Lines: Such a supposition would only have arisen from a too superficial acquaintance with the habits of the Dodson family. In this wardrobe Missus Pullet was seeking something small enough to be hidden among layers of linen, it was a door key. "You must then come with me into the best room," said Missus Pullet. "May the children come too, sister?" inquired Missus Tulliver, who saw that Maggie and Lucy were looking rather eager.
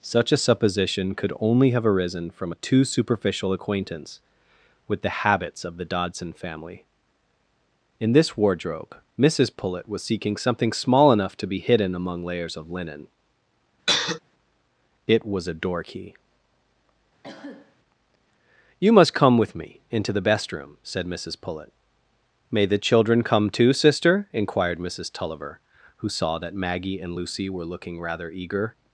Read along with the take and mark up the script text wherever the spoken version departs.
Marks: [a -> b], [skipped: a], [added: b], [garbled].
Such a supposition [would -> could] only have arisen from a too superficial acquaintance with the habits of the Dodson family. In this wardrobe Missus Pullet was seeking something small enough to be hidden among layers of linen, it was a door key. "You must [skipped: then] come with me into the best room," said Missus Pullet. "May the children come too, sister?" inquired Missus Tulliver, who saw that Maggie and Lucy were looking rather eager.